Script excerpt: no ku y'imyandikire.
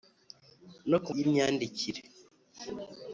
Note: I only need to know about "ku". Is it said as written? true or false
true